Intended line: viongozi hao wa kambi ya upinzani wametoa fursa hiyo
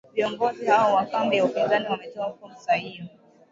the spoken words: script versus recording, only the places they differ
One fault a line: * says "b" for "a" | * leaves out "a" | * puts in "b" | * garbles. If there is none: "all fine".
all fine